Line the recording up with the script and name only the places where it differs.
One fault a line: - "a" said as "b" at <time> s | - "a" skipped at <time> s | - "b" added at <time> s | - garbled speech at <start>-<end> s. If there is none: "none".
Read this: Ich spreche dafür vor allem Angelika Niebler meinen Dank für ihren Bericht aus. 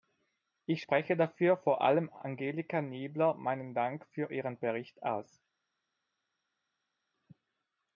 none